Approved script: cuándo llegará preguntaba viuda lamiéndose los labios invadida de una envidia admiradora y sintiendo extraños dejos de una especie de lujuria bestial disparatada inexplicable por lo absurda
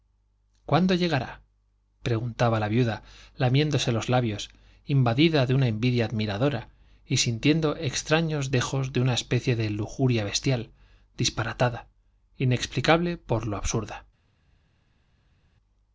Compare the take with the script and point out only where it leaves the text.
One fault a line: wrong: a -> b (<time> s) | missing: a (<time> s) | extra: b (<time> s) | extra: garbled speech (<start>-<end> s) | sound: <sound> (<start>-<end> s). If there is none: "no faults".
extra: la (2.6 s)